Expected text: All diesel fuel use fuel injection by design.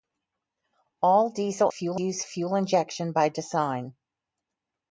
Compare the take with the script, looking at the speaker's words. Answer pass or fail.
pass